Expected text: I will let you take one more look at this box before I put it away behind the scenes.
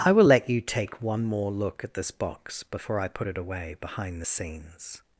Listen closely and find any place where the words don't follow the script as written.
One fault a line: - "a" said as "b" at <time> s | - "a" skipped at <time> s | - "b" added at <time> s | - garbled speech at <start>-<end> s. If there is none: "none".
none